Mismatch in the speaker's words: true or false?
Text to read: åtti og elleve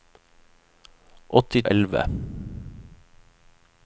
false